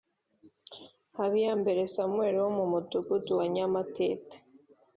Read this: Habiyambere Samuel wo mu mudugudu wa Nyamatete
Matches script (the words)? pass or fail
pass